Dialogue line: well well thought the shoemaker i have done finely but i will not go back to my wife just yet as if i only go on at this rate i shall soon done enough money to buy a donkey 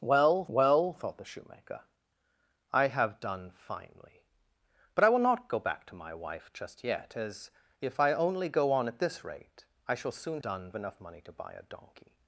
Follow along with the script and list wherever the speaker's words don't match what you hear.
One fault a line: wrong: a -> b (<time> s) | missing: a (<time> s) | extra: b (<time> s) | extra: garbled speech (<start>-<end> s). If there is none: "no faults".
no faults